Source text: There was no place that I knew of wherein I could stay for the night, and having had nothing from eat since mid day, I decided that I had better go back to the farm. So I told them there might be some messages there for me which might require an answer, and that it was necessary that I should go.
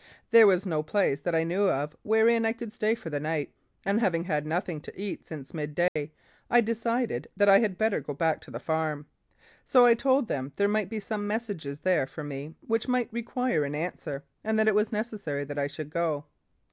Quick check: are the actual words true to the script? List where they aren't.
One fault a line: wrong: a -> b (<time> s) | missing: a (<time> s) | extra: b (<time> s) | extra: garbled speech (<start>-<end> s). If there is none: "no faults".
wrong: from -> to (4.8 s)